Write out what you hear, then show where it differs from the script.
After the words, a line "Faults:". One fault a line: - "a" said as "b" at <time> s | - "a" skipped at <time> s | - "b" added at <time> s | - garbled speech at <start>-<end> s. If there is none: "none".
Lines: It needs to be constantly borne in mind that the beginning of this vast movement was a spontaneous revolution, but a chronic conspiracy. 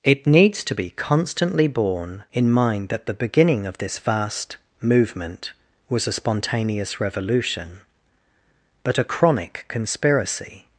It needs to be constantly borne in mind that the beginning of this vast movement was a spontaneous revolution, but a chronic conspiracy.
Faults:
none